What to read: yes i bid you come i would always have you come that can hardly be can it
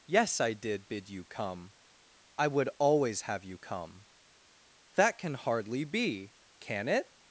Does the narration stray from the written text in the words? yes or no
yes